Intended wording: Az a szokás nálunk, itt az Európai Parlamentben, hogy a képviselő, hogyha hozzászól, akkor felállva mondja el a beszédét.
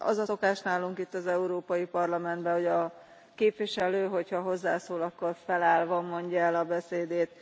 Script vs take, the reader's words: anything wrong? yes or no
no